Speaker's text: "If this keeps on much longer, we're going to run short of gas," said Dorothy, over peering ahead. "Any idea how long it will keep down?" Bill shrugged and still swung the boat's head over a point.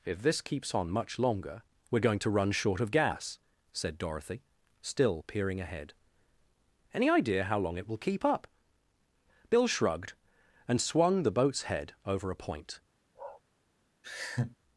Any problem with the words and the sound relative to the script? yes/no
yes